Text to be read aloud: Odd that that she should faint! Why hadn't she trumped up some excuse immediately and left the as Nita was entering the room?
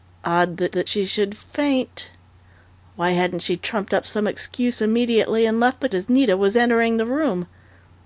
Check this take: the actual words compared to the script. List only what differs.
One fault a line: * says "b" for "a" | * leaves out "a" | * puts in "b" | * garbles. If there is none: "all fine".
all fine